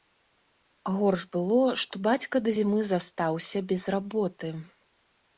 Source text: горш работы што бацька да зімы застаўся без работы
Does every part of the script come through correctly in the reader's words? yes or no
no